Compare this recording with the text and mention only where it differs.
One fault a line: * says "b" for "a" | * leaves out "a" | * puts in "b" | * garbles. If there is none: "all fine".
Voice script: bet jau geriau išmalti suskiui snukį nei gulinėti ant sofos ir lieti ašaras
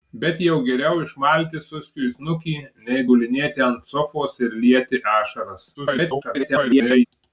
* garbles